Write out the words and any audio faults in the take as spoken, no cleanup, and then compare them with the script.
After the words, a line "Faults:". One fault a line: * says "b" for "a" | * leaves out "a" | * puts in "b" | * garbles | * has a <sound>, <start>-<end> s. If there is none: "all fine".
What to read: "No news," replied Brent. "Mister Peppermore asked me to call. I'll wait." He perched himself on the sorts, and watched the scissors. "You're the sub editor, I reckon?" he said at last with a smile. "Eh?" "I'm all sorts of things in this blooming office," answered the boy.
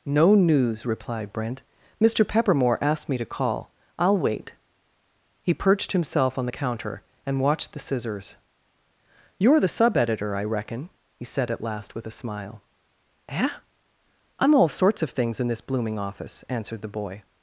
"No news," replied Brent. "Mister Peppermore asked me to call. I'll wait." He perched himself on the counter, and watched the scissors. "You're the sub editor, I reckon?" he said at last with a smile. "Eh?" "I'm all sorts of things in this blooming office," answered the boy.
Faults:
* says "counter" for "sorts"